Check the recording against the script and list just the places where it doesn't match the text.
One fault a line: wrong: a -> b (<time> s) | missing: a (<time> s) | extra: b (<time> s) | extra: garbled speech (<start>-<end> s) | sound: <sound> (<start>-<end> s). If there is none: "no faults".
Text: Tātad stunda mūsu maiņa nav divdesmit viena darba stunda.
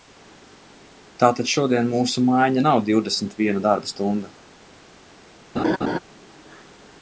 wrong: stunda -> šodien (1.5 s)
sound: laugh (5.6-6.0 s)